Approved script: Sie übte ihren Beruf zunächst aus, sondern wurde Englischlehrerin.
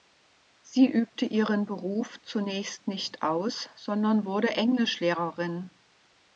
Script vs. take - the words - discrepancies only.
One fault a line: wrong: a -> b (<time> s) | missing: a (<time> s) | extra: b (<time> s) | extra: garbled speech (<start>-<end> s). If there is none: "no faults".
extra: nicht (2.9 s)